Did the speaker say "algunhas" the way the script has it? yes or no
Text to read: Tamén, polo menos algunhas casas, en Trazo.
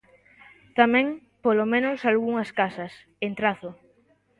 yes